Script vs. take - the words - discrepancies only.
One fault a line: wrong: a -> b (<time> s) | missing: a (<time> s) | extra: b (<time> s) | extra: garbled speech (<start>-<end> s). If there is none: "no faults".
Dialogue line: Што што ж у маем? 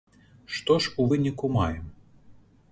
missing: што (0.8 s)
extra: выніку (1.1 s)